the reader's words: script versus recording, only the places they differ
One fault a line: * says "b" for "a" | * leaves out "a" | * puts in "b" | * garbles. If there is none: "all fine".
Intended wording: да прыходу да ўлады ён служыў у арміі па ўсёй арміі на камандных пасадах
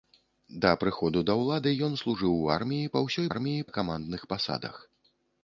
all fine